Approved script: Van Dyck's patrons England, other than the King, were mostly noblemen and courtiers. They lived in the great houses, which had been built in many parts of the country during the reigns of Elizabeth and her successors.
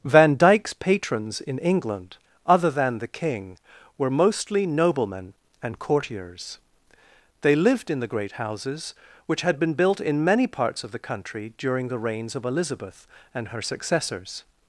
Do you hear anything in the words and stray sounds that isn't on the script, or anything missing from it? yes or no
yes